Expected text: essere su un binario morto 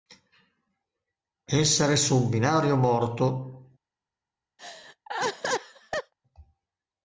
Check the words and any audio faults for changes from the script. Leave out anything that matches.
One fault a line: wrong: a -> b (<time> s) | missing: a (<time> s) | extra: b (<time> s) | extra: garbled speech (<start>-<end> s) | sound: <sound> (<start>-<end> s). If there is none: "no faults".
sound: laugh (4.6-6.1 s)